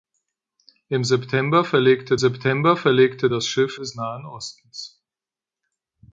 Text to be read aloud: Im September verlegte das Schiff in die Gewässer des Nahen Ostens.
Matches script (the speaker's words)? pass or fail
fail